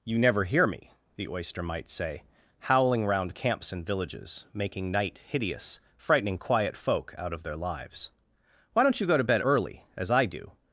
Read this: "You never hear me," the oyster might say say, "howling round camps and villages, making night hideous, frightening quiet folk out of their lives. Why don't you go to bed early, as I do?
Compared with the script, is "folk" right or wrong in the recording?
right